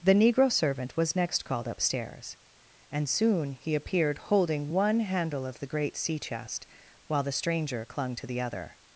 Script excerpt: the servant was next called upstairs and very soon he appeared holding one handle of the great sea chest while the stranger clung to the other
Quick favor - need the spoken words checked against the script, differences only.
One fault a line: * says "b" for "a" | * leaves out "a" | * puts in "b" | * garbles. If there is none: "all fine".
* puts in "negro"
* leaves out "very"